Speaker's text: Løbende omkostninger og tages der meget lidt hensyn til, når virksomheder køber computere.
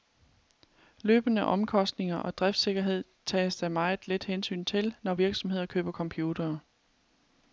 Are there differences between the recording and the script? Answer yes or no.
yes